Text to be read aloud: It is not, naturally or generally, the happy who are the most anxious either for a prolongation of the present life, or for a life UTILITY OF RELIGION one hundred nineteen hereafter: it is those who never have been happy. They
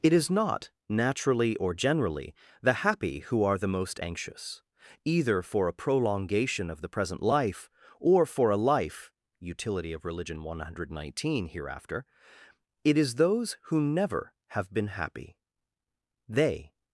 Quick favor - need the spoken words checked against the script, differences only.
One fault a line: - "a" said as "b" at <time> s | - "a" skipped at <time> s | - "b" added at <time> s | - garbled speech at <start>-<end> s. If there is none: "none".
none